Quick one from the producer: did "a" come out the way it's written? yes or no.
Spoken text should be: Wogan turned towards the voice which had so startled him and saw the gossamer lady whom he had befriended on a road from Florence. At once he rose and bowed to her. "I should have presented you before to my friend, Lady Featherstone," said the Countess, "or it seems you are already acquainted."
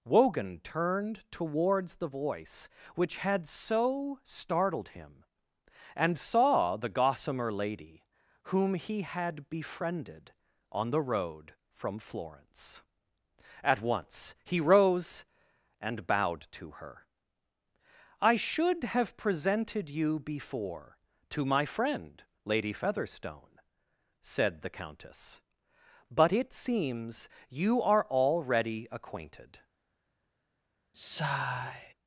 no